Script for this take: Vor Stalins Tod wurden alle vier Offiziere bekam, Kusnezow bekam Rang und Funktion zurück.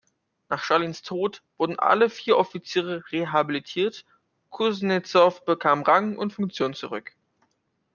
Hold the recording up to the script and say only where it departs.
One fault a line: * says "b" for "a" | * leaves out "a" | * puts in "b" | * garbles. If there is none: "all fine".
* says "Nach" for "Vor"
* says "rehabilitiert" for "bekam"